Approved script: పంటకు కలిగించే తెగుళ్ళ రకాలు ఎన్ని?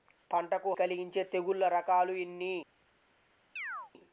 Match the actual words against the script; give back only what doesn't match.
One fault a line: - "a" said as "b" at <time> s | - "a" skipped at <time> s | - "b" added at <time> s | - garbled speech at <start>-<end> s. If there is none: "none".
none